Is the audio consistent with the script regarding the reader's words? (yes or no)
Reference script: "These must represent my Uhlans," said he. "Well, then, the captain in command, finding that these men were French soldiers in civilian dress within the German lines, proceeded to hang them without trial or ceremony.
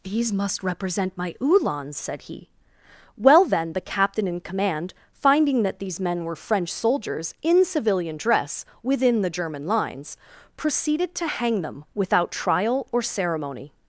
yes